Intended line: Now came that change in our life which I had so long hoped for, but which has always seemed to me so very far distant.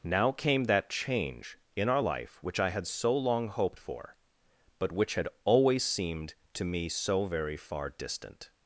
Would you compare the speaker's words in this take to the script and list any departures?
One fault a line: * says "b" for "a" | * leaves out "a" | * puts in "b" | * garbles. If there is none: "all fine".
* says "had" for "has"